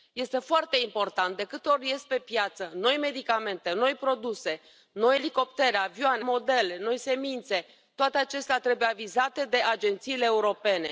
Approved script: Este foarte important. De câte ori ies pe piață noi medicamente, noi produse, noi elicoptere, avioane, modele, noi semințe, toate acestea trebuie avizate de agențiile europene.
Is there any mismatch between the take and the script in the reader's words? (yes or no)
no